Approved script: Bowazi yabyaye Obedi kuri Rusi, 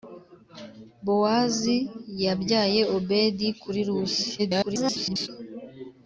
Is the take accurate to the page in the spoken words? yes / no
no